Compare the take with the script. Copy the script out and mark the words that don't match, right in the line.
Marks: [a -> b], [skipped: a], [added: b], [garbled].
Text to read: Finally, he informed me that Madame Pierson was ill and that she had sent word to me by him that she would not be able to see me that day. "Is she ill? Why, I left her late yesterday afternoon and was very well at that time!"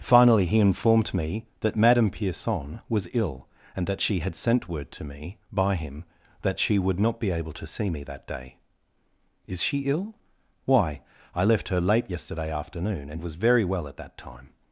Finally, he informed me that Madame Pierson was ill and that she had sent word to me by him that she would not be able to see me that day. "Is she ill? Why, I left her late yesterday afternoon and was very well at that time!"